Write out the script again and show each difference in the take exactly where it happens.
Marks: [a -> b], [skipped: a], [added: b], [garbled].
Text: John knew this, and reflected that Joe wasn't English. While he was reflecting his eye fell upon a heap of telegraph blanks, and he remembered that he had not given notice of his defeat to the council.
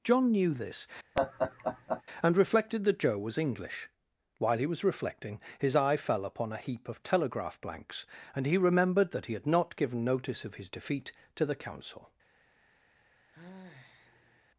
John knew this, and reflected that Joe [wasn't -> was] English. While he was reflecting his eye fell upon a heap of telegraph blanks, and he remembered that he had not given notice of his defeat to the council.